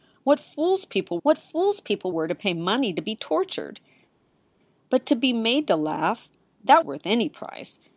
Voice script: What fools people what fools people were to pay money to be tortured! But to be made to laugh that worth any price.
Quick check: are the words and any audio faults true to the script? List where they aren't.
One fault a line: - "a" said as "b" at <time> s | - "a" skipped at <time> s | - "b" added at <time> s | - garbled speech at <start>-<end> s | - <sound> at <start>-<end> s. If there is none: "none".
none